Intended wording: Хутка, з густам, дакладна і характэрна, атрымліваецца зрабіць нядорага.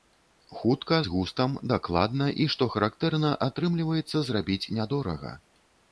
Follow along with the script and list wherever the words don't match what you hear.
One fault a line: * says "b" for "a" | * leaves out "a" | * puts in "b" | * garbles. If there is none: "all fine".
* puts in "што"